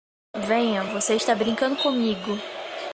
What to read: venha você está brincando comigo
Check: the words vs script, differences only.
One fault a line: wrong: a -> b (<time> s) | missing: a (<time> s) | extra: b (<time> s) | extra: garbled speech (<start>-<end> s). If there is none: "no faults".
no faults